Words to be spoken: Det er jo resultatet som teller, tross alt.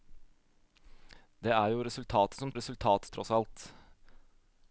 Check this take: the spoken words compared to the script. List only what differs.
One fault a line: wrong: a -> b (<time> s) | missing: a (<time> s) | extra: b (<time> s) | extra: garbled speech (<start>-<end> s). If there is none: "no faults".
wrong: teller -> resultatet (2.6 s)